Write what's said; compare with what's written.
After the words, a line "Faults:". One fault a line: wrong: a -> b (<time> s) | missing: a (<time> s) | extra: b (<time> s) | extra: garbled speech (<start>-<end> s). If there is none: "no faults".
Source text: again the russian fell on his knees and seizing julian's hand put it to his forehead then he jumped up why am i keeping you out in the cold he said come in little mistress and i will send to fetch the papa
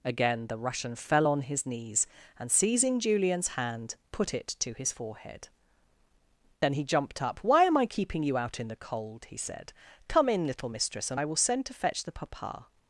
again the russian fell on his knees and seizing julian's hand put it to his forehead then he jumped up why am i keeping you out in the cold he said come in little mistress and i will send to fetch the papa
Faults:
no faults